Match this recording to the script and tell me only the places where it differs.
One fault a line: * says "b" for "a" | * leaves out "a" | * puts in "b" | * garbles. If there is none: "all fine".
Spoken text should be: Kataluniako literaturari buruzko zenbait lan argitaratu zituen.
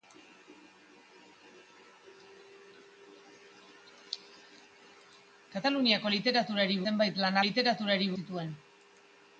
* leaves out "buruzko"
* says "literaturari" for "argitaratu"